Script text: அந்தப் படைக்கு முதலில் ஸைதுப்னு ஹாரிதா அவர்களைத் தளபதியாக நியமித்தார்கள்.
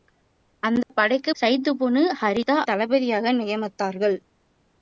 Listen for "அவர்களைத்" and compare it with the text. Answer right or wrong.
wrong